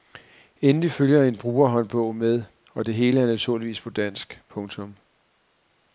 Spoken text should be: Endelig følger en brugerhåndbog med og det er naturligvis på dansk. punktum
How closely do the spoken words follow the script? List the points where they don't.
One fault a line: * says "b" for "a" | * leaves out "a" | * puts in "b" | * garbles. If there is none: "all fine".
* puts in "hele"